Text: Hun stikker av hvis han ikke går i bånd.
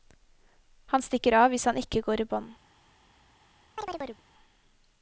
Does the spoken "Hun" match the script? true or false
false